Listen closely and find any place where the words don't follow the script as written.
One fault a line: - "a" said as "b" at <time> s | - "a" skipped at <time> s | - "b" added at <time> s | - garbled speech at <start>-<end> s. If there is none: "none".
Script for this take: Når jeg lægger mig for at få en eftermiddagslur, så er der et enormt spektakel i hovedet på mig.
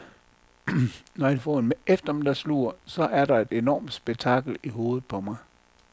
- "lægger mig for" skipped at 1.4 s